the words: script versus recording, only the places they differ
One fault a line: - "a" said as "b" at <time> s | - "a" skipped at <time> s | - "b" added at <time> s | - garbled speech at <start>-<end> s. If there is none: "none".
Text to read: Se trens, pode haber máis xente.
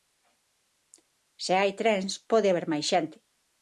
- "hai" added at 1.6 s